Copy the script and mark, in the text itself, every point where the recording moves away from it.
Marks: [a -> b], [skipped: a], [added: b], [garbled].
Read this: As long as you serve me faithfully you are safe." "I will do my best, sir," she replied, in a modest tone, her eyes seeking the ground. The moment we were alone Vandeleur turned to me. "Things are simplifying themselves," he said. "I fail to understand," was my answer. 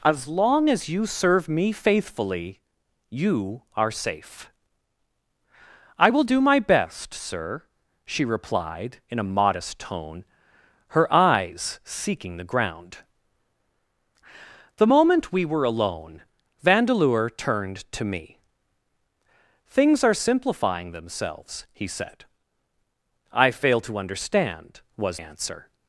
As long as you serve me faithfully you are safe." "I will do my best, sir," she replied, in a modest tone, her eyes seeking the ground. The moment we were alone Vandeleur turned to me. "Things are simplifying themselves," he said. "I fail to understand," was [skipped: my] answer.